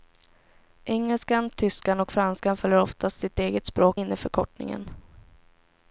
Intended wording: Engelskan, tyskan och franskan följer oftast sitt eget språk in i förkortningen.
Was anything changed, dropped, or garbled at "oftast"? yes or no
no